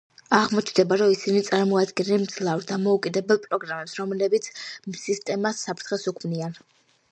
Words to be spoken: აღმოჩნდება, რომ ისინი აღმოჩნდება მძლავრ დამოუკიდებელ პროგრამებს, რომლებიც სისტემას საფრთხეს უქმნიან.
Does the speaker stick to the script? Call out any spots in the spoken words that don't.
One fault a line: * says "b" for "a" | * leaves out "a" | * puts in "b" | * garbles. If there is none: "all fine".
* says "წარმოადგენენ" for "აღმოჩნდება"